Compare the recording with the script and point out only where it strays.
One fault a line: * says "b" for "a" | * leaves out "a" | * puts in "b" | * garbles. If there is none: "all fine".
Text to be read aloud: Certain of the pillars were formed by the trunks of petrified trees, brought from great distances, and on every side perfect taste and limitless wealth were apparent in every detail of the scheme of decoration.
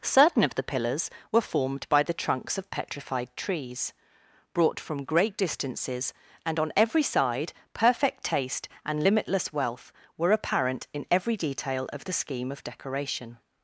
all fine